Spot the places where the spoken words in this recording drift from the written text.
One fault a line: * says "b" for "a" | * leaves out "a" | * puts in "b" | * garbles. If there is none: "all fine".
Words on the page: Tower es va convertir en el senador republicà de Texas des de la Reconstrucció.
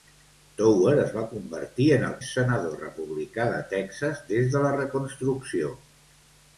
all fine